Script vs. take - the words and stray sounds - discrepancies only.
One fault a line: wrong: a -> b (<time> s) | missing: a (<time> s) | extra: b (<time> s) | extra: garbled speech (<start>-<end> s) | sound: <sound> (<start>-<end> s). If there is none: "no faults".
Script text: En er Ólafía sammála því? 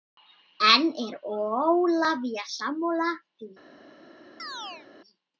sound: chirp (4.4-4.9 s)